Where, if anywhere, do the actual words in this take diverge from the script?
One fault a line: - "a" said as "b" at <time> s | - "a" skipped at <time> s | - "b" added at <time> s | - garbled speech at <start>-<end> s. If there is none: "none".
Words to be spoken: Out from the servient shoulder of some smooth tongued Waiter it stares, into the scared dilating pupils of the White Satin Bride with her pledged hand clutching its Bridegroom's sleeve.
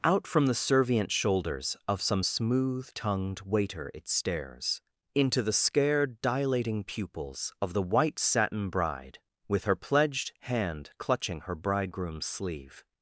- "shoulder" said as "shoulders" at 1.1 s
- "its" said as "her" at 11.4 s